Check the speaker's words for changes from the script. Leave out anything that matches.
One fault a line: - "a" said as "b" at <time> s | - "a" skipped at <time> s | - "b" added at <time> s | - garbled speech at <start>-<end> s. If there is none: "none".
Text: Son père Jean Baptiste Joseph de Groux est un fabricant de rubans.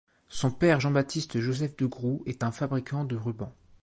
none